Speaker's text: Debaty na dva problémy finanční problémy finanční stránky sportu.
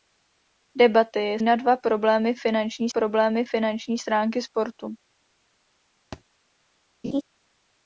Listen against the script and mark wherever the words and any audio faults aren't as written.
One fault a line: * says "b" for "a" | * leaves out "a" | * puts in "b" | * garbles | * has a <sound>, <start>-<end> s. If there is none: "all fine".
* has a thud, 6.1-6.2 s
* has a laugh, 7.0-7.2 s